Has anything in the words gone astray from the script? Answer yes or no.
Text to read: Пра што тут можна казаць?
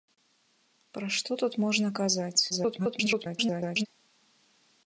yes